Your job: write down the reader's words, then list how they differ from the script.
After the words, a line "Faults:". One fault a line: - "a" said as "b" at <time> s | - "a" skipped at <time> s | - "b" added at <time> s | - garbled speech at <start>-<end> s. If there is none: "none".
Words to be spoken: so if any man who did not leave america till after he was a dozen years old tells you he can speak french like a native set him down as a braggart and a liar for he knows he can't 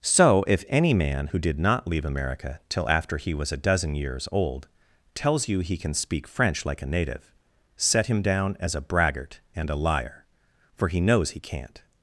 so if any man who did not leave america till after he was a dozen years old tells you he can speak french like a native set him down as a braggart and a liar for he knows he can't
Faults:
none